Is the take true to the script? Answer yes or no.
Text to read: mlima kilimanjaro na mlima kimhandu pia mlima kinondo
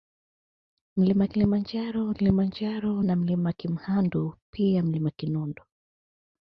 no